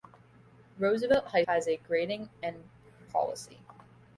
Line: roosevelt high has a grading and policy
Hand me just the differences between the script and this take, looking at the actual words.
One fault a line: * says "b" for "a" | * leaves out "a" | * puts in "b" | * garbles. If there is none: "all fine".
all fine